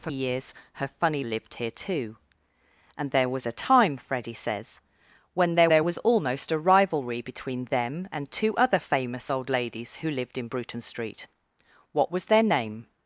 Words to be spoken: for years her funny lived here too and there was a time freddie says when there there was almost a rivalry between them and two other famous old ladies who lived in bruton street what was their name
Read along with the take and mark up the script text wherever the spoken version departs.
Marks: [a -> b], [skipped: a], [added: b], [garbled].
for years her funny lived here too and there was a time freddie says when there there was almost a rivalry between them and two other famous old ladies who lived in bruton street what was their name